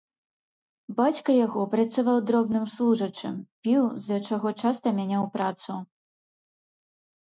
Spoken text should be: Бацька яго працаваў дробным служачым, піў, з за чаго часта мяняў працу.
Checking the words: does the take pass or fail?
pass